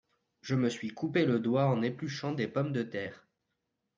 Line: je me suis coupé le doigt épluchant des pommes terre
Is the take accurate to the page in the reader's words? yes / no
no